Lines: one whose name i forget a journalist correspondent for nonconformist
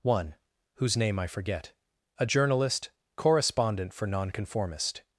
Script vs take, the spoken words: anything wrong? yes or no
no